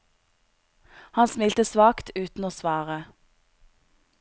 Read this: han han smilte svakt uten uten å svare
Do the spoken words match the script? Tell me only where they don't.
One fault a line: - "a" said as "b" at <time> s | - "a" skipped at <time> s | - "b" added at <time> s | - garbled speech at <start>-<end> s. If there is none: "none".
- "han" skipped at 1.3 s
- "uten" skipped at 2.5 s